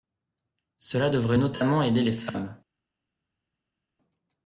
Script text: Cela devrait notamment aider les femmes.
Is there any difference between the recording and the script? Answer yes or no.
no